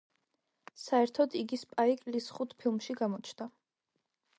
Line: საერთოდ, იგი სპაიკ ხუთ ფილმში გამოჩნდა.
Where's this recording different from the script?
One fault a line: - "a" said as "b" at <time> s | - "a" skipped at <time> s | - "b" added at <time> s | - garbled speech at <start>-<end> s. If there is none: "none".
- "ლის" added at 2.2 s